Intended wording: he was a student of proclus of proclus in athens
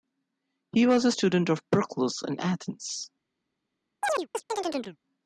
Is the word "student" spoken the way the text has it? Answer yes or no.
yes